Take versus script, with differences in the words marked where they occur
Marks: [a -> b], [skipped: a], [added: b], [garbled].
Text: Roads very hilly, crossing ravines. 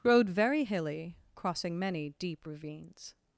[Roads -> Road] very hilly, crossing [added: many deep] ravines.